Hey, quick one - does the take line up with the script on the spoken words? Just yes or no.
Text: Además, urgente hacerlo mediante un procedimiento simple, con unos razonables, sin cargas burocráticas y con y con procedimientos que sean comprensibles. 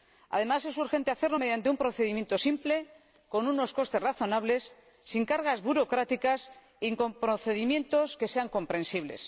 no